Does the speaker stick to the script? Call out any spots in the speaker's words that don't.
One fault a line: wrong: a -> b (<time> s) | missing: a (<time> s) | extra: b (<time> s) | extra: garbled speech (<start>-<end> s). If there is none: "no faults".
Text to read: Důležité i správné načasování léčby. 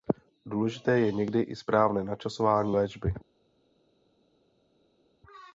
extra: je někdy (1.0 s)